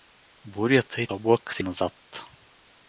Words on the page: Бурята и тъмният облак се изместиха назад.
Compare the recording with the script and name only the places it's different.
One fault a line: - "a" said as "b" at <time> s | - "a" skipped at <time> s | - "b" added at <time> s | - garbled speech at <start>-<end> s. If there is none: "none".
- "тъмният" skipped at 1.1 s
- "изместиха" skipped at 1.6 s